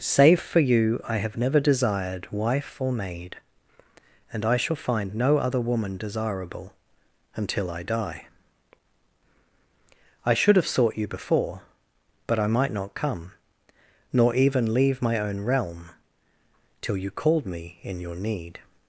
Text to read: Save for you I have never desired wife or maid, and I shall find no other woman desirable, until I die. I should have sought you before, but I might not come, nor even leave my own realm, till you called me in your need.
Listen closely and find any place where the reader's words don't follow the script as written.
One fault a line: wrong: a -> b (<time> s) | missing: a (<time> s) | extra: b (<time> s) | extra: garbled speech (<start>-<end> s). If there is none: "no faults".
no faults